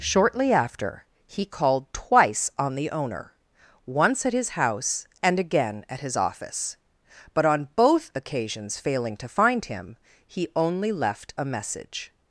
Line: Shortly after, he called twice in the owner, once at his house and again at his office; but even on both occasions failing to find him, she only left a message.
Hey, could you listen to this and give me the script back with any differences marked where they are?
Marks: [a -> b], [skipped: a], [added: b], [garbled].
Shortly after, he called twice [in -> on] the owner, once at his house and again at his office; but [skipped: even] on both occasions failing to find him, [she -> he] only left a message.